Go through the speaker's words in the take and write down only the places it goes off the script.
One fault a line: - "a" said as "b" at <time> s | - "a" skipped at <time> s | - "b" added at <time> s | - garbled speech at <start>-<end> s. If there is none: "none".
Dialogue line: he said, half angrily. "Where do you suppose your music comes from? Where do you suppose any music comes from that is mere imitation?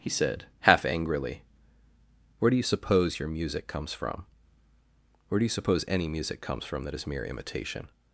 none